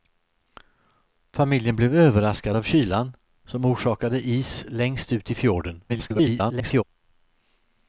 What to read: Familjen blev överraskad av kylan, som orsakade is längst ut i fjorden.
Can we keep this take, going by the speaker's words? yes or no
no